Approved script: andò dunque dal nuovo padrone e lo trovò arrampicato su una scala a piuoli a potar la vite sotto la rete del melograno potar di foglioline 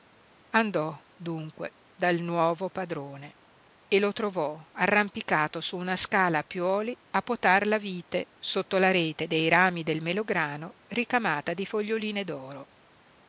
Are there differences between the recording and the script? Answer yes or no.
yes